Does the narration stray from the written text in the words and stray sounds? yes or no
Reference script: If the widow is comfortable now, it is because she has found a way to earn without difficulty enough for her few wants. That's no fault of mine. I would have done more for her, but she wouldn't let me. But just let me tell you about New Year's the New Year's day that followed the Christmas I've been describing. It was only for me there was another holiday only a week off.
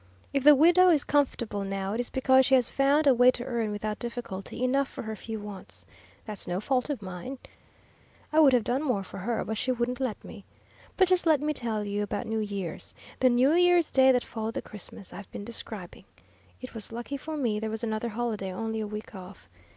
yes